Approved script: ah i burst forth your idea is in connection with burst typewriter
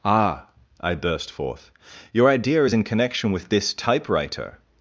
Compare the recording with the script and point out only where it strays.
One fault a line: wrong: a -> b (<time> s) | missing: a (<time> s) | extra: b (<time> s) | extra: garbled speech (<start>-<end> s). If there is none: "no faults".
wrong: burst -> this (3.5 s)